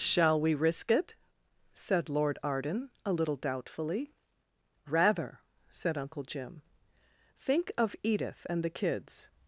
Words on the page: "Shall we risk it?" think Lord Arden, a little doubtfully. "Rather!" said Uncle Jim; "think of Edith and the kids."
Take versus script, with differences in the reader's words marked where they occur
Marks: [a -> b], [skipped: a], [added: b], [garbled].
"Shall we risk it?" [think -> said] Lord Arden, a little doubtfully. "Rather!" said Uncle Jim; "think of Edith and the kids."